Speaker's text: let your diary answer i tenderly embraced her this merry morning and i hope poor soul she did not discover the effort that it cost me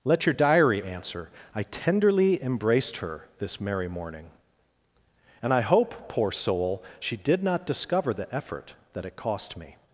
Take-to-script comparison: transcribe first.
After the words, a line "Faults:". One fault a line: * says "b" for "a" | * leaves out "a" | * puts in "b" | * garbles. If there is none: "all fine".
let your diary answer i tenderly embraced her this merry morning and i hope poor soul she did not discover the effort that it cost me
Faults:
all fine